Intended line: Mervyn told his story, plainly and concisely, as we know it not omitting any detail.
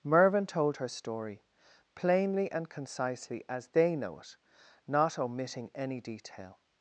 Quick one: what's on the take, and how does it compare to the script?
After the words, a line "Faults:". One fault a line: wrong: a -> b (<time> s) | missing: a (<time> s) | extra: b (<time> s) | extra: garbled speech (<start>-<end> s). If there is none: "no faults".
Mervyn told her story, plainly and concisely, as they know it not omitting any detail.
Faults:
wrong: his -> her (0.8 s)
wrong: we -> they (3.7 s)